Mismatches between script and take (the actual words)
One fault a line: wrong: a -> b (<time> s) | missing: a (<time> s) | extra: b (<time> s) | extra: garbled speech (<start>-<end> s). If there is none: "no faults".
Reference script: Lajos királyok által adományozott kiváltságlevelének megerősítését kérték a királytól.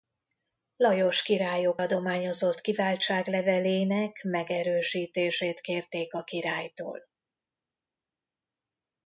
missing: által (1.8 s)